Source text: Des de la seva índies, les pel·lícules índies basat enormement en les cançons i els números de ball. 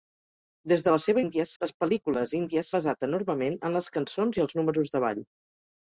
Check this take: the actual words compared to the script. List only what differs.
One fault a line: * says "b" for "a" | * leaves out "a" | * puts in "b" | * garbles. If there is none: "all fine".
all fine